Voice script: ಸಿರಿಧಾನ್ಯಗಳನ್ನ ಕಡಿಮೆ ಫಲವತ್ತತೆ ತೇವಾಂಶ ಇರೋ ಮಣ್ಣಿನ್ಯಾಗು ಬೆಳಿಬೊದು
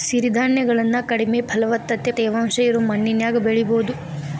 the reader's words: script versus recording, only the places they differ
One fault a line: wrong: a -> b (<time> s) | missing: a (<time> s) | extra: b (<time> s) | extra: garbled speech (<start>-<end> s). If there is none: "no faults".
no faults